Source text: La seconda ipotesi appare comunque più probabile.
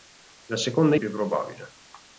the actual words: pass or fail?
fail